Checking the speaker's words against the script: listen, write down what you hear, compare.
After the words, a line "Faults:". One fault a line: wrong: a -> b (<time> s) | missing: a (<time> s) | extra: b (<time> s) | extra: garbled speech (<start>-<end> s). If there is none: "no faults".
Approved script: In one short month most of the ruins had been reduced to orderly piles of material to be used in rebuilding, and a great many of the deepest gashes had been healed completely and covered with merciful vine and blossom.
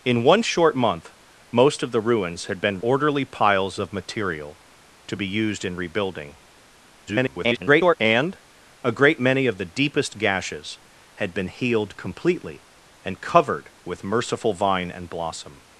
In one short month most of the ruins had been orderly piles of material to be used in rebuilding, [garbled] and a great many of the deepest gashes had been healed completely and covered with merciful vine and blossom.
Faults:
missing: reduced to (2.8 s)
extra: garbled speech (7.1-8.0 s)